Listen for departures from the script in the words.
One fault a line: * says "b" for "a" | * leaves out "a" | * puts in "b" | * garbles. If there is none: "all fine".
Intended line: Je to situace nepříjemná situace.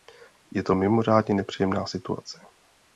* says "mimořádně" for "situace"